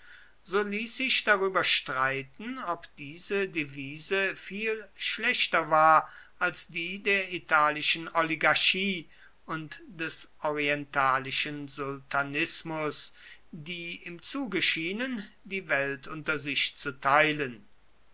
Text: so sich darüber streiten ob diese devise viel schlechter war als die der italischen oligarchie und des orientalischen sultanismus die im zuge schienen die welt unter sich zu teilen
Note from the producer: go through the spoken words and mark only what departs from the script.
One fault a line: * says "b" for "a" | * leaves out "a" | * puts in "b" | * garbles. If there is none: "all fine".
* puts in "ließ"